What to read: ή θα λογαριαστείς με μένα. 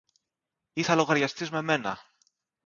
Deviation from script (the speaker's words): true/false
false